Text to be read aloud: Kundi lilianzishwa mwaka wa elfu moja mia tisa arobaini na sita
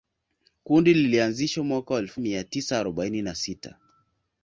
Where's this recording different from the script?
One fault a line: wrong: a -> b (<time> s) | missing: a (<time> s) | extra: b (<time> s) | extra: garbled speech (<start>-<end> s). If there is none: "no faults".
missing: moja (2.2 s)